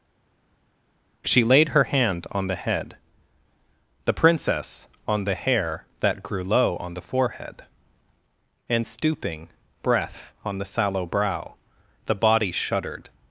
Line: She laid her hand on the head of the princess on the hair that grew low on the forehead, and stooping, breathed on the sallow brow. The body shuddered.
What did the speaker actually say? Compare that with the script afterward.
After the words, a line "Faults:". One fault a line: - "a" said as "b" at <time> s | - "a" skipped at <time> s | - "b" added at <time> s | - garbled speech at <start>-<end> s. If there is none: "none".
She laid her hand on the head the princess on the hair that grew low on the forehead, and stooping, breath on the sallow brow. The body shuddered.
Faults:
- "of" skipped at 2.9 s
- "breathed" said as "breath" at 9.8 s